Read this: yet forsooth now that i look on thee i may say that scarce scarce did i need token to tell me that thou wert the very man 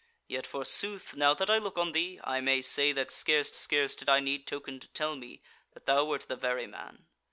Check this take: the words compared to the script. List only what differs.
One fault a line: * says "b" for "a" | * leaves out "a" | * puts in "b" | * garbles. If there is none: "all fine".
all fine